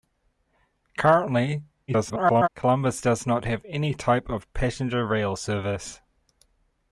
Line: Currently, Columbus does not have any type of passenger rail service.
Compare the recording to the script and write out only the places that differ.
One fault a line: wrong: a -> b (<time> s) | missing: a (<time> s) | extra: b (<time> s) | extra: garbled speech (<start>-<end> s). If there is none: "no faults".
extra: garbled speech (1.9-2.5 s)